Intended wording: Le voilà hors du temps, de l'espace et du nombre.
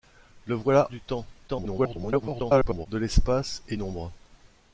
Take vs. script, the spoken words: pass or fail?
fail